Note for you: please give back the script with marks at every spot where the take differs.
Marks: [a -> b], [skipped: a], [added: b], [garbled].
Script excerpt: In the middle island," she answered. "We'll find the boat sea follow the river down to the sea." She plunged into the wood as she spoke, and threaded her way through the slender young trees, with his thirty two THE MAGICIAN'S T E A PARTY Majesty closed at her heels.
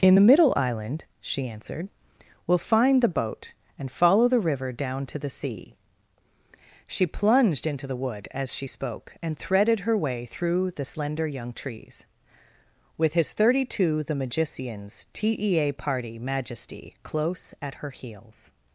In the middle island," she answered. "We'll find the boat [sea -> and] follow the river down to the sea." She plunged into the wood as she spoke, and threaded her way through the slender young trees, with his thirty two THE MAGICIAN'S T E A PARTY Majesty [closed -> close] at her heels.